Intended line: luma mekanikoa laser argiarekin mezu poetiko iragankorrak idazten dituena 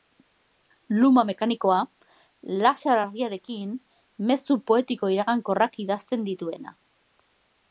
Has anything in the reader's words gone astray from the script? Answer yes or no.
no